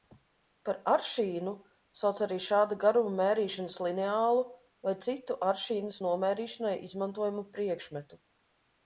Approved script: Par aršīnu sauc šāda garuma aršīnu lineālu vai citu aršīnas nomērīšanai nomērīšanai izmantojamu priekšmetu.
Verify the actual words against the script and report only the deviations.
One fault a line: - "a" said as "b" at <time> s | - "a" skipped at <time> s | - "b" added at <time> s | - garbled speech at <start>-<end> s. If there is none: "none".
- "arī" added at 2.3 s
- "aršīnu" said as "mērīšanas" at 3.2 s
- "nomērīšanai" skipped at 6.7 s